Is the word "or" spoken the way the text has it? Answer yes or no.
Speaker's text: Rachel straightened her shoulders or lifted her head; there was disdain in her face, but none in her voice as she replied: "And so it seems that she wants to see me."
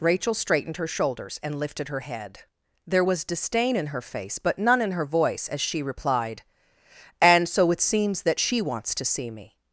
no